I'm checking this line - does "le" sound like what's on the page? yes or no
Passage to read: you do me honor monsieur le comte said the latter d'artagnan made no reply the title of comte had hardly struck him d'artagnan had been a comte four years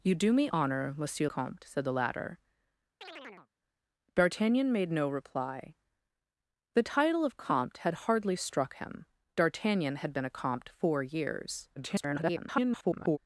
no